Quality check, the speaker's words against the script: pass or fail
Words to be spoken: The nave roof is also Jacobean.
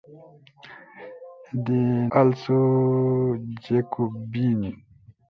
fail